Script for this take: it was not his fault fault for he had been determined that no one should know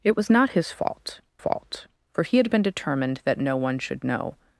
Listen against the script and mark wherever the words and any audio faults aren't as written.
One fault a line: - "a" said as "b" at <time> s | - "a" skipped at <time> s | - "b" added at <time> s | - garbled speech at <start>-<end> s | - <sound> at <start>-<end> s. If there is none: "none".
none